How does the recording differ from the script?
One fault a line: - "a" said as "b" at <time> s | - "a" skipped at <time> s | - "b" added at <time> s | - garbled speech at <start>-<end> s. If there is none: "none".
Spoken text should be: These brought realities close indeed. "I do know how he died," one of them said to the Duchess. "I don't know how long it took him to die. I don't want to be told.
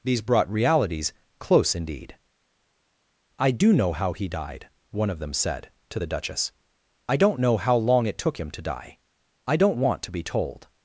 none